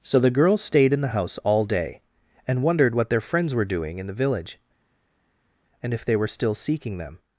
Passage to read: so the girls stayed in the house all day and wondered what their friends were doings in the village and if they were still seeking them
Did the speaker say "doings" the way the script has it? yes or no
no